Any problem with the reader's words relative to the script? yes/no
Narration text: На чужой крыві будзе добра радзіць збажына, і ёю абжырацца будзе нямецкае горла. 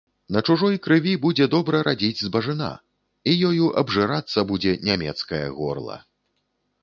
no